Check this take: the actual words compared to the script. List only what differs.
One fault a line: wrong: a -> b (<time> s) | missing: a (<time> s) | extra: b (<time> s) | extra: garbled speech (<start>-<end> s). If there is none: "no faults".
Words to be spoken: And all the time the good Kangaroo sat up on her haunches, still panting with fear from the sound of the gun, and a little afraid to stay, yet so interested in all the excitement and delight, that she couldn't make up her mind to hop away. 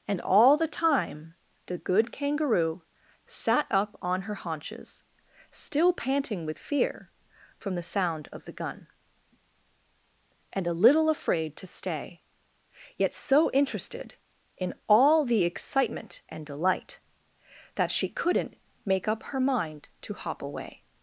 no faults